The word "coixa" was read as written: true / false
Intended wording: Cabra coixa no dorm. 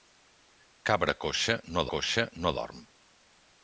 true